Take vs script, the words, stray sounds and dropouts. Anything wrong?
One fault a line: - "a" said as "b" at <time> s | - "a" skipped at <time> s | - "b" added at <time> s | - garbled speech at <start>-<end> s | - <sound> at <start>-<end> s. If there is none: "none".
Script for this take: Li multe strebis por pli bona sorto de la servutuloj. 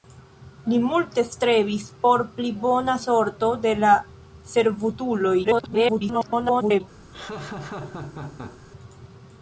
- garbled speech at 5.4-6.8 s
- laugh at 7.1-8.6 s